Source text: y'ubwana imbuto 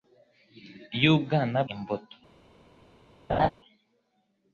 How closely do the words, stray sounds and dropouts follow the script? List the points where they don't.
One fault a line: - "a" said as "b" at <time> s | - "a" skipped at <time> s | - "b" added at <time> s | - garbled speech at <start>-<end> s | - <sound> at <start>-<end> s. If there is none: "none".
- laugh at 3.3-3.5 s